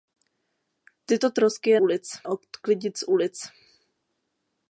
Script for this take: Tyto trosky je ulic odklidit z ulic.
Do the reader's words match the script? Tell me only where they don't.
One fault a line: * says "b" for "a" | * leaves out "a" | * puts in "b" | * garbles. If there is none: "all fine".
all fine